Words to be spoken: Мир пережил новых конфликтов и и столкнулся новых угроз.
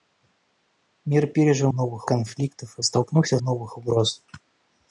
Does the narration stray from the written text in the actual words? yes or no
no